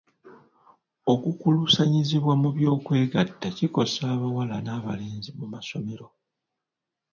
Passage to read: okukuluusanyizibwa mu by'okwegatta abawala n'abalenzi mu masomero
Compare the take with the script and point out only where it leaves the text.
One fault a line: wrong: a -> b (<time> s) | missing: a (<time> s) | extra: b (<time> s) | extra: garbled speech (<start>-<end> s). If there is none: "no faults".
extra: kikosa (3.6 s)